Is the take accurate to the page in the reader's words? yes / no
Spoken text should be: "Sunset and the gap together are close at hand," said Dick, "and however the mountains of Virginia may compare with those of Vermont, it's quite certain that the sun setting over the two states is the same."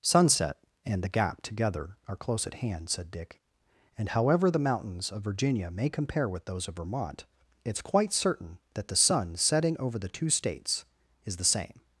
yes